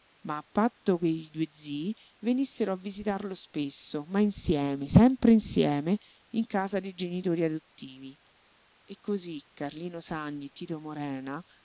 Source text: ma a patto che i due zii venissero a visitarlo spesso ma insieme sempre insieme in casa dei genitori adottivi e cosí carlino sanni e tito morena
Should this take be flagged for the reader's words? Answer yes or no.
no